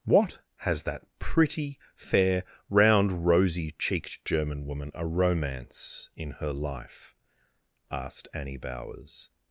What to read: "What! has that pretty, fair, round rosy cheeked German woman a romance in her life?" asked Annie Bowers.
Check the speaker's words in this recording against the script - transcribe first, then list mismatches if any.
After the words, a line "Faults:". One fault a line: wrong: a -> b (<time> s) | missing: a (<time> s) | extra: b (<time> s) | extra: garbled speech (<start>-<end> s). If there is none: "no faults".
"What! has that pretty, fair, round rosy cheeked German woman a romance in her life?" asked Annie Bowers.
Faults:
no faults